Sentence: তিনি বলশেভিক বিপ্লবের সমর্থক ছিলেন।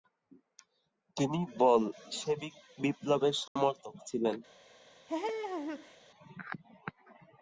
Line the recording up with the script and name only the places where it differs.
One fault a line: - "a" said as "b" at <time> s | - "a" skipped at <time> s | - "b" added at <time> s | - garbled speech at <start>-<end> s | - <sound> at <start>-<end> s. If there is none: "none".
- dropout at 3.5-3.6 s
- laugh at 5.1-6.0 s